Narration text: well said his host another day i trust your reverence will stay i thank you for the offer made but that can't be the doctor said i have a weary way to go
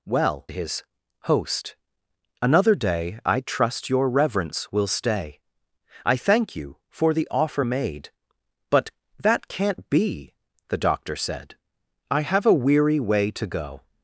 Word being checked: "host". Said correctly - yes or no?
yes